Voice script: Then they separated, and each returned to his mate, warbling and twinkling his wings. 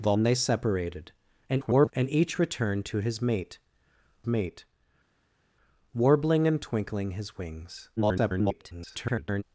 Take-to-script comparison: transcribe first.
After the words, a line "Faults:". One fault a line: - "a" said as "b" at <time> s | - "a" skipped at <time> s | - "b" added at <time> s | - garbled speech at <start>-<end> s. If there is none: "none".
Then they separated, [garbled] and each returned to his mate mate, warbling and twinkling his wings. [garbled]
Faults:
- garbled speech at 1.5-1.9 s
- "mate" added at 4.3 s
- garbled speech at 8.0-9.4 s